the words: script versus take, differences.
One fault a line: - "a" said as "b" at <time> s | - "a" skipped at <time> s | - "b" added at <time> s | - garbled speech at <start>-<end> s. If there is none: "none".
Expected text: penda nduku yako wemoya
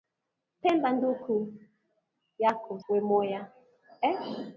none